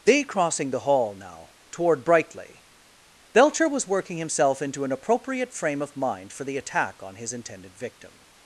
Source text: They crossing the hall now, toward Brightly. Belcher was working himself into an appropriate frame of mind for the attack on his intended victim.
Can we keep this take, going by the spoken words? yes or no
yes